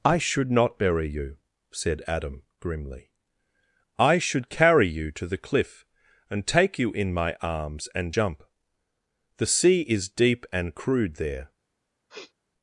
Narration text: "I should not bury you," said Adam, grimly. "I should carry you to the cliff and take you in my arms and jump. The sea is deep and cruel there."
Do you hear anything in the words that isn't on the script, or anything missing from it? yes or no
yes